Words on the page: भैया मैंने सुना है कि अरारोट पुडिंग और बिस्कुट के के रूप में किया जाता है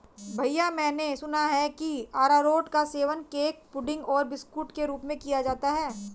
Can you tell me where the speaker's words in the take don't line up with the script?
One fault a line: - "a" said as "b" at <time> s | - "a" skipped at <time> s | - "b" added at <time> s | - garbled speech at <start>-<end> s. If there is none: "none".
- "का सेवन केक" added at 2.7 s
- "के" skipped at 4.9 s